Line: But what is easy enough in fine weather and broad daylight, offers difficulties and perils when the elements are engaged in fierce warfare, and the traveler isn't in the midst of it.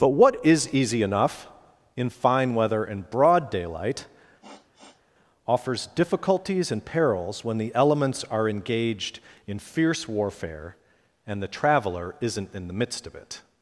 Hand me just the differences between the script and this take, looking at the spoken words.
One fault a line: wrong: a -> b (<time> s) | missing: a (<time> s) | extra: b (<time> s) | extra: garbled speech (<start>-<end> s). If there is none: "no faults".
no faults